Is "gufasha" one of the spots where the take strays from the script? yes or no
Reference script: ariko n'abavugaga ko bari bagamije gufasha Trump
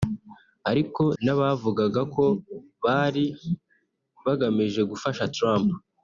no